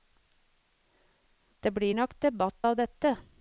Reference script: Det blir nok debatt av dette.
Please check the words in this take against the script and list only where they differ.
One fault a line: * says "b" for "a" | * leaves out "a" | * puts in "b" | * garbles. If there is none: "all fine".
all fine